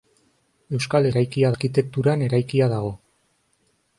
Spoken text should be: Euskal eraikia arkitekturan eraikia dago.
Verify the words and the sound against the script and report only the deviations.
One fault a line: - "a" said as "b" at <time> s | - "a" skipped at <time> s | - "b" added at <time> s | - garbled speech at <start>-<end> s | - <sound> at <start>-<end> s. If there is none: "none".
none